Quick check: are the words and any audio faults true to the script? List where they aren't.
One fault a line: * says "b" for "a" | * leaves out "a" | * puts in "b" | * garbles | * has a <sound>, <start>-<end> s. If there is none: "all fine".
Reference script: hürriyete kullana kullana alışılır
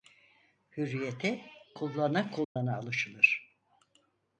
* has a dropout, 2.4-2.6 s